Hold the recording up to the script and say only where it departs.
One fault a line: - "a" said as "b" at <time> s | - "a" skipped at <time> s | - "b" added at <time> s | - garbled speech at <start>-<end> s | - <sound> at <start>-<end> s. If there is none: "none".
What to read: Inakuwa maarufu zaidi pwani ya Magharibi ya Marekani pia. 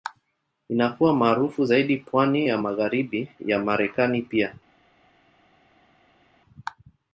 none